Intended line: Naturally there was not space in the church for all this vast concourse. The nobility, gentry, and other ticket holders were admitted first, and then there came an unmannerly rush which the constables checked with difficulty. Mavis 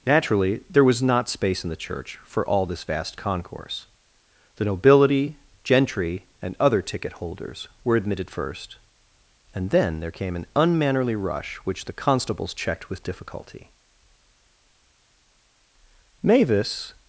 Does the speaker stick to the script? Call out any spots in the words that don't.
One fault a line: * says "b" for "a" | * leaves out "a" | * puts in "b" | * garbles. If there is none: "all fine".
all fine